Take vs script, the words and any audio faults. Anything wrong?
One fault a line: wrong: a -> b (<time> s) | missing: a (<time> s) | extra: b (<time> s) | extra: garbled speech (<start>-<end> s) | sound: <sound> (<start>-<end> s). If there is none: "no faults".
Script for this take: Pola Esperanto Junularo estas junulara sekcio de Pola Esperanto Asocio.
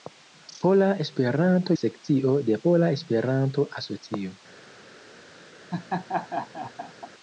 missing: Junularo estas junulara (1.8 s)
sound: laugh (5.7-7.1 s)